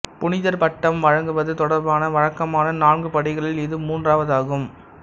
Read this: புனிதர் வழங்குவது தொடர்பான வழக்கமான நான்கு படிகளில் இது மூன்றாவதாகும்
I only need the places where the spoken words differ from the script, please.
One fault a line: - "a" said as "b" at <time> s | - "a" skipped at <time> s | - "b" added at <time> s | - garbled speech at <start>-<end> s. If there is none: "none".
- "பட்டம்" added at 0.6 s